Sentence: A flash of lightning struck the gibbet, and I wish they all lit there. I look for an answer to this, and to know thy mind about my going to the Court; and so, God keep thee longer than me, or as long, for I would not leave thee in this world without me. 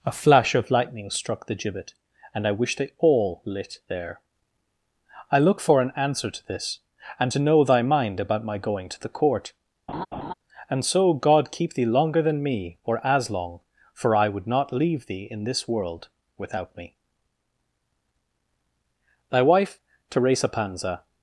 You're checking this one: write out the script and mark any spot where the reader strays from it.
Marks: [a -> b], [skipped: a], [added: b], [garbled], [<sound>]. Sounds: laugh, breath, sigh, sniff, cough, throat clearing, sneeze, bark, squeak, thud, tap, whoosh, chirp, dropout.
A flash of lightning struck the gibbet, and I wish they all lit there. I look for an answer to this, and to know thy mind about my going to the Court; [laugh] and so, God keep thee longer than me, or as long, for I would not leave thee in this world without me. [added: Thy wife TERESA PANZA]